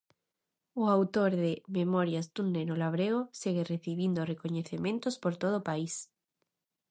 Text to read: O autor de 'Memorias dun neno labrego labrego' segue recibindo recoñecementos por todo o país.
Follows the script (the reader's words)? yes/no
no